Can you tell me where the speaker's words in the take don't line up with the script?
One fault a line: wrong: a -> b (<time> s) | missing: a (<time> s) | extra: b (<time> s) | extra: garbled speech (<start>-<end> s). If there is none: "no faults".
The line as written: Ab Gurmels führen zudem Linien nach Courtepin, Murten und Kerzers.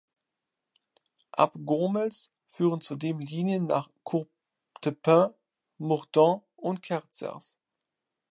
no faults